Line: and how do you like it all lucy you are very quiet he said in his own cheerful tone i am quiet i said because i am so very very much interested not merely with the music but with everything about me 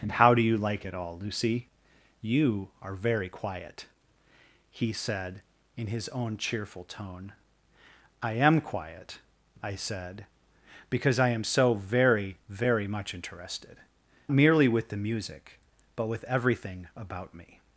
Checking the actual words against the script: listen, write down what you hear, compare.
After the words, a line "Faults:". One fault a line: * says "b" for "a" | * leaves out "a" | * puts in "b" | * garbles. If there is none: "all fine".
and how do you like it all lucy you are very quiet he said in his own cheerful tone i am quiet i said because i am so very very much interested merely with the music but with everything about me
Faults:
* leaves out "not"